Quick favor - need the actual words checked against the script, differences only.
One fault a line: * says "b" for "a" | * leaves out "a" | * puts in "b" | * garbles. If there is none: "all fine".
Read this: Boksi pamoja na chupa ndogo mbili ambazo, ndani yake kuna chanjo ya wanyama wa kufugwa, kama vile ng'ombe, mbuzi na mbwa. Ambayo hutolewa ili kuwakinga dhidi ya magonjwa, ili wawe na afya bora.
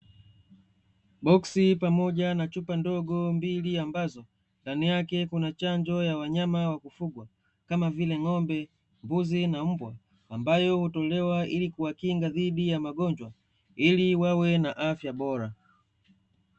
all fine